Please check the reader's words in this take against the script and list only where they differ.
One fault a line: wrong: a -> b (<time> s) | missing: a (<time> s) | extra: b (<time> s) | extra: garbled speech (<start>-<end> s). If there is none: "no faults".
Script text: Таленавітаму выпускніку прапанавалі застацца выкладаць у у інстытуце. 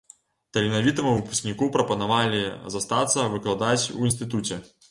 missing: у (4.1 s)